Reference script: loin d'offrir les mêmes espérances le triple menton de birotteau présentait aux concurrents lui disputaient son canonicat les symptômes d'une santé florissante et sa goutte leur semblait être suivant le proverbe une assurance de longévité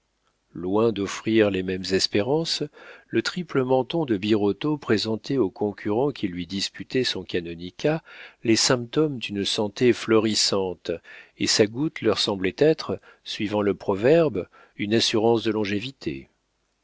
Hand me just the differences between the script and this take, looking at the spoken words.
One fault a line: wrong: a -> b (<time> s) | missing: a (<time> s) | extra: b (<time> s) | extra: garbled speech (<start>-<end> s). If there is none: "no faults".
extra: qui (6.1 s)